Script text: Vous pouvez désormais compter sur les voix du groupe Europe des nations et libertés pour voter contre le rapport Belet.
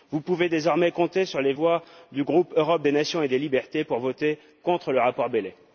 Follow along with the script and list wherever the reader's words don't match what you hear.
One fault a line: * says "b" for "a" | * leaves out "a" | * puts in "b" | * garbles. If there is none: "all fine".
* puts in "des"